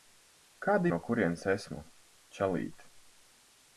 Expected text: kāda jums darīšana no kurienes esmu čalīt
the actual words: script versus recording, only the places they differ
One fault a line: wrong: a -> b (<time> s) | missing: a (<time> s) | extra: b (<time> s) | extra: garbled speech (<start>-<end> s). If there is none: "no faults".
missing: jums darīšana (0.9 s)